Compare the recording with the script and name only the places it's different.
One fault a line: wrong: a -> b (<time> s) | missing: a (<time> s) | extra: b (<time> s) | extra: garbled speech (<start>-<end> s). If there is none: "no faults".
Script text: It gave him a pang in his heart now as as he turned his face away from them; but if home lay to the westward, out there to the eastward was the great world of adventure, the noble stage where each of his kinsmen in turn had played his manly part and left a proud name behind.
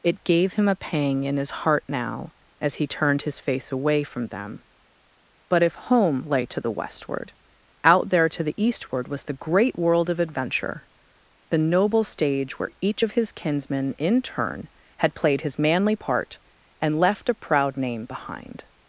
missing: as (2.8 s)